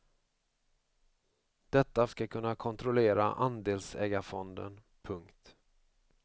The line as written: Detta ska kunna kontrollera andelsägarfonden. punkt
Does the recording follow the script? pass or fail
pass